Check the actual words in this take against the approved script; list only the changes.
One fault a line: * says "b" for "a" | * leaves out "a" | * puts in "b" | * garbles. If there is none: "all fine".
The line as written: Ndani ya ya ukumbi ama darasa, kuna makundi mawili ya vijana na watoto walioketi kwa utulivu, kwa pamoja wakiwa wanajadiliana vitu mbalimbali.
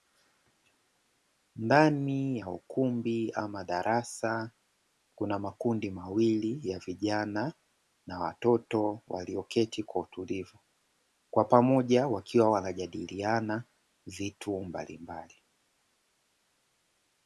* leaves out "ya"